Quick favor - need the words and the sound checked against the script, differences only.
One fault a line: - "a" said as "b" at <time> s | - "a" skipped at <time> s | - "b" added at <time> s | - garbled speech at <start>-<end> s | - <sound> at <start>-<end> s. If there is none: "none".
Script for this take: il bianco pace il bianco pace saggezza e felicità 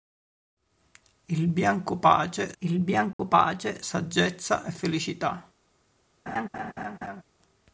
- dropout at 3.1-3.2 s
- laugh at 6.3-7.2 s